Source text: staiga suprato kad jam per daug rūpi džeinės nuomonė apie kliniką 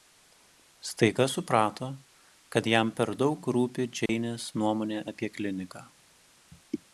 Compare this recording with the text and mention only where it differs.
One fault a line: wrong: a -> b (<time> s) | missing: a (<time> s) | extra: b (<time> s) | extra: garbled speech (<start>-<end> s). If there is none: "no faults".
no faults